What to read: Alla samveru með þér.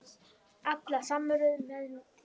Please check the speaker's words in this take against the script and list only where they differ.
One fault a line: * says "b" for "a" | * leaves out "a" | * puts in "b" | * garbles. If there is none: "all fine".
all fine